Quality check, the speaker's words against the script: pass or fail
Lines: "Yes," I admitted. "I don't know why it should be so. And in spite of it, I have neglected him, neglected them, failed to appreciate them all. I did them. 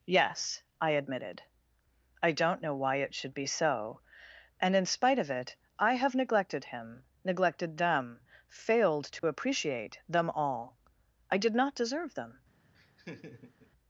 fail